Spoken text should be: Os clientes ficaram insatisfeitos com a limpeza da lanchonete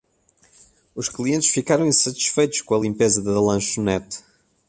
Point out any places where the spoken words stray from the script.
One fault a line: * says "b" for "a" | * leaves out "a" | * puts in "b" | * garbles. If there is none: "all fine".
all fine